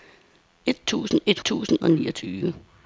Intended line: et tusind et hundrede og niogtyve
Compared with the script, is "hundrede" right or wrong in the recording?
wrong